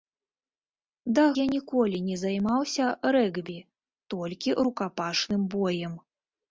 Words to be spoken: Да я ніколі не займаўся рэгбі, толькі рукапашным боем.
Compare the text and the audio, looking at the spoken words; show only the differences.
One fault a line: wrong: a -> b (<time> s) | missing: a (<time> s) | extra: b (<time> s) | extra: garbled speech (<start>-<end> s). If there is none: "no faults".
no faults